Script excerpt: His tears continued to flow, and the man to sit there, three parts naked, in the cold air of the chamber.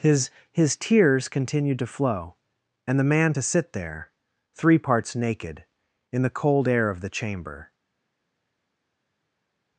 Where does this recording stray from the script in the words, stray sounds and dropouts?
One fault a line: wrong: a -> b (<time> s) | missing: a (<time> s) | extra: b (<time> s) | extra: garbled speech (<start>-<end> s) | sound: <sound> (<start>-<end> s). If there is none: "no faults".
extra: his (0.5 s)